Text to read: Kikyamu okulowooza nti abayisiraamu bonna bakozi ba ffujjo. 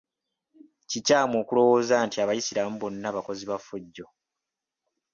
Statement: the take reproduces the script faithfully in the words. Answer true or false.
true